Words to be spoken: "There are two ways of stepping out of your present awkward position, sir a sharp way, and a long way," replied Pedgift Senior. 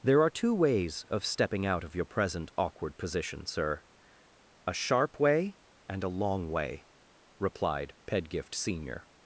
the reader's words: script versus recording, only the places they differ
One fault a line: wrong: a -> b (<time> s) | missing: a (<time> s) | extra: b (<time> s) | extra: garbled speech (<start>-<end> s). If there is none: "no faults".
no faults